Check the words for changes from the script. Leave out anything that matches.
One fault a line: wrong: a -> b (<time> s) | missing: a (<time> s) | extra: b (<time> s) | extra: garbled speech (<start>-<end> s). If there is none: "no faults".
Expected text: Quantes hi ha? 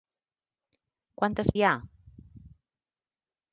no faults